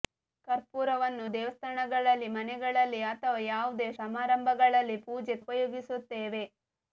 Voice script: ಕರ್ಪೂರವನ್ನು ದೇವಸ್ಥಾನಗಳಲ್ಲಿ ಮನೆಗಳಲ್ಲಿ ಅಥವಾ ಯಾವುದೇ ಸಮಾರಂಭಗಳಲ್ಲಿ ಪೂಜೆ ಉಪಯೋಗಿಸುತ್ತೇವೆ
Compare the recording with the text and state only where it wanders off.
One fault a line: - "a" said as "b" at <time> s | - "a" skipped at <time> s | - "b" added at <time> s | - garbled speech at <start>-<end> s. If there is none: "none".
none